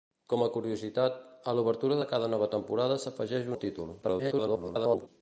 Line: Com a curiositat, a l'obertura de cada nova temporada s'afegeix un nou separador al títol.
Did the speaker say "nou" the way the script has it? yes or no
no